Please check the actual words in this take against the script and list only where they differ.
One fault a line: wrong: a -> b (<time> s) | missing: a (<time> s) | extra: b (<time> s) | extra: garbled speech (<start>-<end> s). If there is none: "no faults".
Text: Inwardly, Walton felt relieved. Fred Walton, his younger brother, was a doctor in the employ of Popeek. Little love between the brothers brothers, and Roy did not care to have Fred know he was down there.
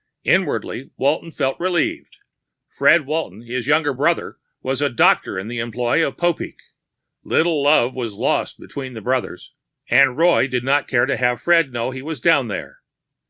extra: was lost (7.9 s)
missing: brothers (9.5 s)